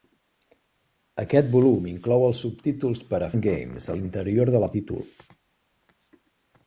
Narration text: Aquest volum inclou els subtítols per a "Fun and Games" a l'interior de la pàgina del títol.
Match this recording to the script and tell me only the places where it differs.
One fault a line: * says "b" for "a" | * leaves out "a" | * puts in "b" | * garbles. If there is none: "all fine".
* leaves out "Fun"
* leaves out "pàgina del"